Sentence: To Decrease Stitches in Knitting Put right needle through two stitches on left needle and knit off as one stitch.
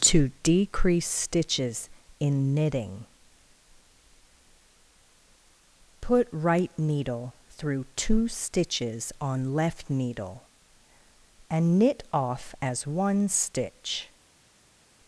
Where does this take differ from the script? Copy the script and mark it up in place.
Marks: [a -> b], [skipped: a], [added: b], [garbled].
To Decrease Stitches in Knitting Put right needle through two stitches on left needle and knit off as one stitch.